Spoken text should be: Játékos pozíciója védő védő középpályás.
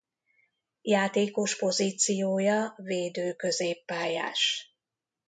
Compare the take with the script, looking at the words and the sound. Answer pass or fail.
fail